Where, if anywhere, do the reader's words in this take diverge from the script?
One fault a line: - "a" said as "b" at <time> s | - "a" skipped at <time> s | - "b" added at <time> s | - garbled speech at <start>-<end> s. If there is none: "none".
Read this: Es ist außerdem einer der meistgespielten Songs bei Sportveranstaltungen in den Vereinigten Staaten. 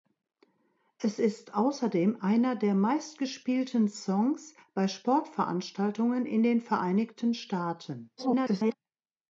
- garbled speech at 8.2-8.7 s